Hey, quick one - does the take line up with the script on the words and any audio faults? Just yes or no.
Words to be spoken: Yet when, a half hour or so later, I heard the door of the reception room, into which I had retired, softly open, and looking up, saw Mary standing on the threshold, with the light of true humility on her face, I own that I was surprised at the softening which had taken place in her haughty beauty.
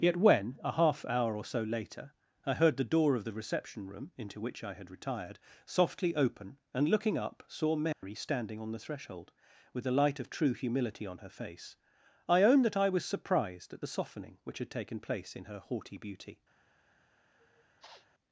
no